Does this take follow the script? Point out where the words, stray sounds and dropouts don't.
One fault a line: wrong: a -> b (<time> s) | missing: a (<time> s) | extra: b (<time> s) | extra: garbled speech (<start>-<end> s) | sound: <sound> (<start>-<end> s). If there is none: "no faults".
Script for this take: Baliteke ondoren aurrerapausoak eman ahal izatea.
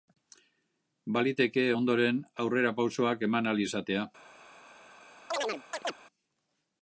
sound: chirp (5.3-5.9 s)